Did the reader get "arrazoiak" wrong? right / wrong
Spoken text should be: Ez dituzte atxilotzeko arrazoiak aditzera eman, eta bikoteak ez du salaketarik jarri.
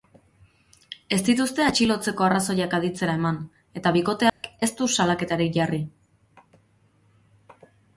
right